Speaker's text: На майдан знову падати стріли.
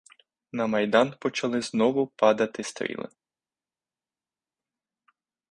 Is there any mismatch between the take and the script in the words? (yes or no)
yes